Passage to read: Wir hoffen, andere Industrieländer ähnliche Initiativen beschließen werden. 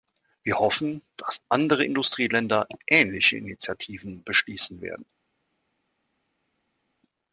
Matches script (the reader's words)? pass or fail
fail